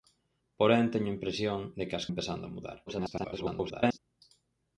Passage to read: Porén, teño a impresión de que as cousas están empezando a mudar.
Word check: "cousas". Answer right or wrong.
wrong